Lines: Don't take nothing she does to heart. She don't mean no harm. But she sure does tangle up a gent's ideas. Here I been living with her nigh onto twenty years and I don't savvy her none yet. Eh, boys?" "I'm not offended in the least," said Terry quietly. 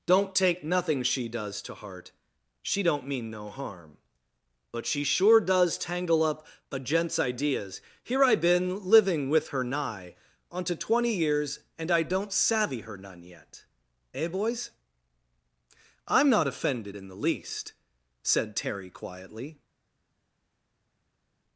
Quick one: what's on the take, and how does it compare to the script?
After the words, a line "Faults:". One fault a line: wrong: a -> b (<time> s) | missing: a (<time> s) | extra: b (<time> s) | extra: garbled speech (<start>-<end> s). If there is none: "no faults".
Don't take nothing she does to heart. She don't mean no harm. But she sure does tangle up a gent's ideas. Here I been living with her nigh onto twenty years and I don't savvy her none yet. Eh, boys?" "I'm not offended in the least," said Terry quietly.
Faults:
no faults